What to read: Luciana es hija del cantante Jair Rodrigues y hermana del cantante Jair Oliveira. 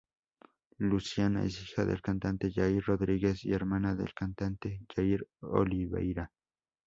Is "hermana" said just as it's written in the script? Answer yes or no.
yes